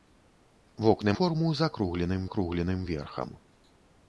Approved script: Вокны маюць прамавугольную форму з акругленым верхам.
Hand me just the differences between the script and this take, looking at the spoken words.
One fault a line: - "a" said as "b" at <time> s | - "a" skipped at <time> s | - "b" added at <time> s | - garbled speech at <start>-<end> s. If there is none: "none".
- "маюць прамавугольную" skipped at 1.1 s
- "акругленым" added at 2.3 s